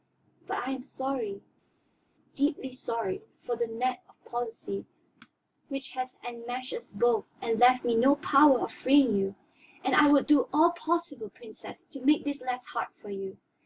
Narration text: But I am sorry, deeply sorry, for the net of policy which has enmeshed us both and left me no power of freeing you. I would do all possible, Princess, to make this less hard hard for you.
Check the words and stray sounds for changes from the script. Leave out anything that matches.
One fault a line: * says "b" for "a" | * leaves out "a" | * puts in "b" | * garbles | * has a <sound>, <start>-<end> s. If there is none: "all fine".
* puts in "And"
* leaves out "hard"